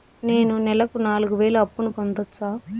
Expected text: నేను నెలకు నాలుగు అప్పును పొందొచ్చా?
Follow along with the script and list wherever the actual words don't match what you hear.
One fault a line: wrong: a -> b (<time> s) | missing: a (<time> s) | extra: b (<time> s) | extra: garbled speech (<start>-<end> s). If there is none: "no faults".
extra: వేలు (1.4 s)